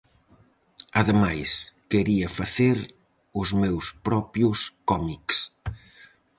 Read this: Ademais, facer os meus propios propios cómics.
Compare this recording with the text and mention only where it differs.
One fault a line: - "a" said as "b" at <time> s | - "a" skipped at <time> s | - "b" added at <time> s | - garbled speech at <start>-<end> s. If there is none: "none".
- "quería" added at 1.9 s
- "propios" skipped at 4.6 s